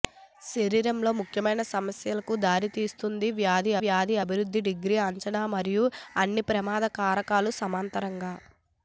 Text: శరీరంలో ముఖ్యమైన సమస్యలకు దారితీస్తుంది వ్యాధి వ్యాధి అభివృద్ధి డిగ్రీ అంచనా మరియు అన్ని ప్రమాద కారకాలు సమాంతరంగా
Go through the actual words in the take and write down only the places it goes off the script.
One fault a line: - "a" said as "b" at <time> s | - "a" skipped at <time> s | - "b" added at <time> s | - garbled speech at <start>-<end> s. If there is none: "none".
none